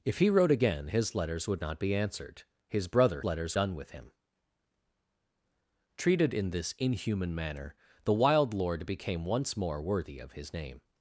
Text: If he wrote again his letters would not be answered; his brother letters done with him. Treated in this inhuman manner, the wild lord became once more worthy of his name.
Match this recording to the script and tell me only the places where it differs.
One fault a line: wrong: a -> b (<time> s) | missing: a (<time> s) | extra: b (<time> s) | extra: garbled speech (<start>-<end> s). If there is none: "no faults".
no faults